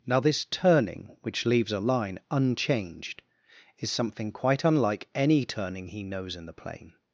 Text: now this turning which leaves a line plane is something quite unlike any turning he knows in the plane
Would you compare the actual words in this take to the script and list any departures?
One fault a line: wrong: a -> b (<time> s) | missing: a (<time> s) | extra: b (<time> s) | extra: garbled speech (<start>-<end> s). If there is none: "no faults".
wrong: plane -> unchanged (2.3 s)